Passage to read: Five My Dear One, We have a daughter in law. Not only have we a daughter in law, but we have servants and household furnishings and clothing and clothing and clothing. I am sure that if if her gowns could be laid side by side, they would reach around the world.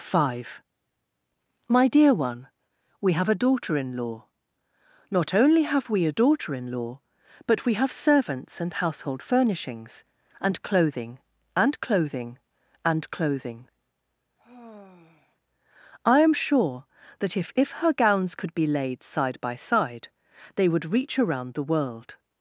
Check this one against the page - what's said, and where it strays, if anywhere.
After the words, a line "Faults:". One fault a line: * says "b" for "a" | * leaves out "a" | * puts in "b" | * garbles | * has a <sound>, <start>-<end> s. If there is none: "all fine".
Five My Dear One, We have a daughter in law. Not only have we a daughter in law, but we have servants and household furnishings and clothing and clothing and clothing. I am sure that if if her gowns could be laid side by side, they would reach around the world.
Faults:
* has a sigh, 14.4-15.4 s